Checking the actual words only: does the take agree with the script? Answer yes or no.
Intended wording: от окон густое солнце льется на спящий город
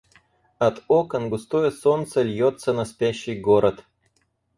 yes